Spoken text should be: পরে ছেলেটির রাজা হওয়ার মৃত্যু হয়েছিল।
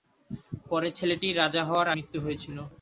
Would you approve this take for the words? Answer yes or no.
yes